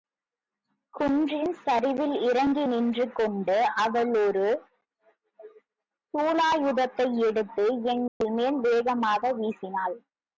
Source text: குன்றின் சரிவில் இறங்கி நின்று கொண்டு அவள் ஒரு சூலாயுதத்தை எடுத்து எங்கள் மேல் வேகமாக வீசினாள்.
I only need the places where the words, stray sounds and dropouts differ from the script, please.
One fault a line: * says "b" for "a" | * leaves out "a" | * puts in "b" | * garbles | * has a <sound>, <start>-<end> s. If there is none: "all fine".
* has a dropout, 8.1-8.2 s